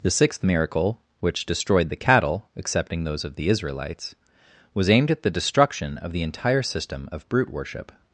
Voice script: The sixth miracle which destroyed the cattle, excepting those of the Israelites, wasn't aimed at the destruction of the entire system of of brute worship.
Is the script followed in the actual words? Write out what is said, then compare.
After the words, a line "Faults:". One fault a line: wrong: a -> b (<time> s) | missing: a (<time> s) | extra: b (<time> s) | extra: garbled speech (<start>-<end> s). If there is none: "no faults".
The sixth miracle which destroyed the cattle, excepting those of the Israelites, was aimed at the destruction of the entire system of brute worship.
Faults:
wrong: wasn't -> was (4.7 s)
missing: of (7.3 s)